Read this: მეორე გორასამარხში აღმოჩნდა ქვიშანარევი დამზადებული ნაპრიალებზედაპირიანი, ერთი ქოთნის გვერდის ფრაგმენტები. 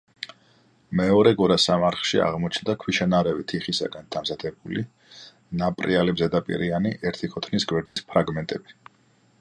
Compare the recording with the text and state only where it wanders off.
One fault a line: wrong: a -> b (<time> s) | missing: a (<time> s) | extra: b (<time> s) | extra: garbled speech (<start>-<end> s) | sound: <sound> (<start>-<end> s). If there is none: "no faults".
extra: თიხისაგან (3.5 s)
sound: dropout (7.9-8.0 s)